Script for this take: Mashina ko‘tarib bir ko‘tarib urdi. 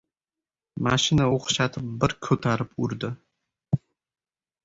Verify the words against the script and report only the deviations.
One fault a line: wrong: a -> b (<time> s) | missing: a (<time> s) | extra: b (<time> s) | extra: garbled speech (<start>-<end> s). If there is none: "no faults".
wrong: ko‘tarib -> o‘xshatib (1.4 s)